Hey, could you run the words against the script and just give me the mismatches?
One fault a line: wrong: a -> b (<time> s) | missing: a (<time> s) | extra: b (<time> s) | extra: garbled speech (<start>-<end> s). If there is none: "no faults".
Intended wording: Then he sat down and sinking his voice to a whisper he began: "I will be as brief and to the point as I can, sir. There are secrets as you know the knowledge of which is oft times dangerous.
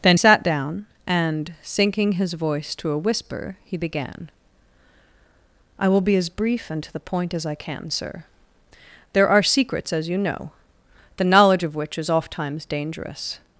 missing: he (0.2 s)